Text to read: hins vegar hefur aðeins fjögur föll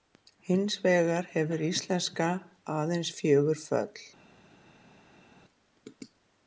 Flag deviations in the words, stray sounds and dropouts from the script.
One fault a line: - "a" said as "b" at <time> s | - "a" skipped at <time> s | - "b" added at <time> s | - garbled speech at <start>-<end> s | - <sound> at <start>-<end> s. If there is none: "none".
- "íslenska" added at 1.7 s